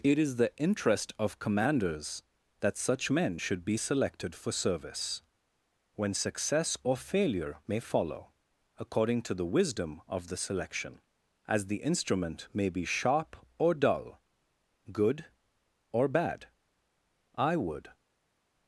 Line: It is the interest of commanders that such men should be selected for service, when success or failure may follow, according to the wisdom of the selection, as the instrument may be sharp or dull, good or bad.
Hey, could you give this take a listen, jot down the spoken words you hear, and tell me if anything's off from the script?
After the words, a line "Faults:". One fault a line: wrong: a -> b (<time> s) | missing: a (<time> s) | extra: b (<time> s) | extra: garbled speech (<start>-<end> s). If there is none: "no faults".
It is the interest of commanders that such men should be selected for service, when success or failure may follow, according to the wisdom of the selection, as the instrument may be sharp or dull, good or bad. I would
Faults:
extra: I would (17.4 s)